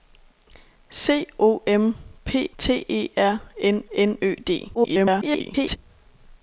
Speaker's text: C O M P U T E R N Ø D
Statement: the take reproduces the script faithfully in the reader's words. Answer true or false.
false